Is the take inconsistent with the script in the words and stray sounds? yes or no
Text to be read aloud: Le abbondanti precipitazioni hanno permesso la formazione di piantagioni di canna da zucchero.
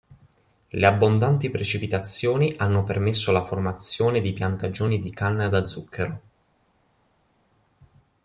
no